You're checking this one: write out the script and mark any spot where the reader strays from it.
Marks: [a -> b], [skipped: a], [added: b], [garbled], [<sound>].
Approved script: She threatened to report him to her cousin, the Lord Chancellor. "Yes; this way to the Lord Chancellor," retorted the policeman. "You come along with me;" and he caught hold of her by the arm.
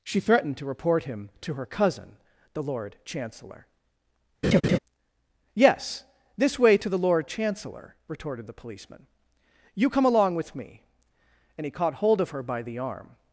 She threatened to report him to her cousin, the Lord Chancellor. [laugh] "Yes; this way to the Lord Chancellor," retorted the policeman. "You come along with me;" and he caught hold of her by the arm.